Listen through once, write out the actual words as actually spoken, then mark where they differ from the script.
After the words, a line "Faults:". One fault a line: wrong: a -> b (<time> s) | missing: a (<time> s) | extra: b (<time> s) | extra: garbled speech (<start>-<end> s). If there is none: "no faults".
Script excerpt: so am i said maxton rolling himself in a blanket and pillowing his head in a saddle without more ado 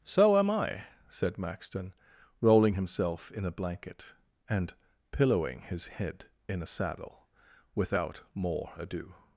so am i said maxton rolling himself in a blanket and pillowing his head in a saddle without more ado
Faults:
no faults